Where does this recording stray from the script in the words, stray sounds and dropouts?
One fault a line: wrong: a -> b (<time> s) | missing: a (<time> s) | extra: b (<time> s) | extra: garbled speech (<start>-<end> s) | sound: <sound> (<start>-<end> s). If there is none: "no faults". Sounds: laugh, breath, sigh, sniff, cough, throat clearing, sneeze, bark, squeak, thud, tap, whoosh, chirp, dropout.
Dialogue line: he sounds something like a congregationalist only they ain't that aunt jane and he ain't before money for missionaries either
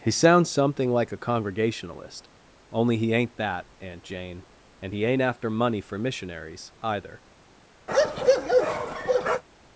wrong: they -> he (3.0 s)
wrong: before -> after (5.2 s)
sound: bark (7.9-9.4 s)